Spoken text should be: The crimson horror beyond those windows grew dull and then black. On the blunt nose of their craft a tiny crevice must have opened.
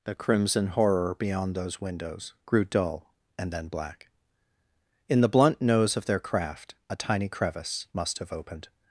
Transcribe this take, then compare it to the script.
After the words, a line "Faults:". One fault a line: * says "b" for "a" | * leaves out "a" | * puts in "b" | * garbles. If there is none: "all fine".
The crimson horror beyond those windows grew dull and then black. In the blunt nose of their craft a tiny crevice must have opened.
Faults:
* says "In" for "On"